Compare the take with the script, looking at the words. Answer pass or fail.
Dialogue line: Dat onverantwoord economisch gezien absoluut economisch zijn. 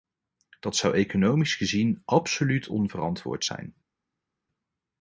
fail